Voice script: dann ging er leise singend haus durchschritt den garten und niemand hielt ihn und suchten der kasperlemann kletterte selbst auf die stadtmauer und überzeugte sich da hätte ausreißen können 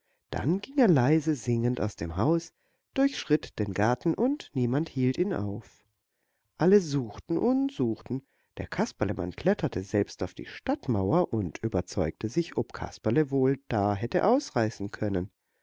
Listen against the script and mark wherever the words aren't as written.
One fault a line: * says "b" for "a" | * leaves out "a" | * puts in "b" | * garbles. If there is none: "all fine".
* puts in "aus dem"
* puts in "auf alle suchten"
* puts in "ob kasperle wohl"